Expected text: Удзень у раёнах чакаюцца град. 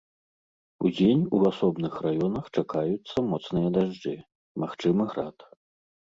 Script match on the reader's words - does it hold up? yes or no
no